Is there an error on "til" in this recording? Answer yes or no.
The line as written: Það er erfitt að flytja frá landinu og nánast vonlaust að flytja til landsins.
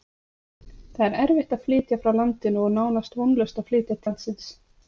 yes